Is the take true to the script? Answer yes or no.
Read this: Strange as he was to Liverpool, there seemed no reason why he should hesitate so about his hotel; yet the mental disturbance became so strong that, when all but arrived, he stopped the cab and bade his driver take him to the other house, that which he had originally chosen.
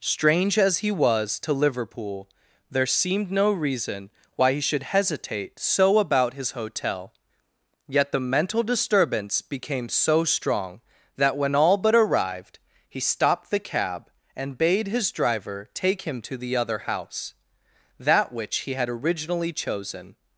yes